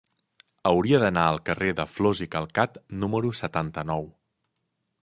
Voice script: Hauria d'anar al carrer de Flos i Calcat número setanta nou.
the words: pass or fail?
pass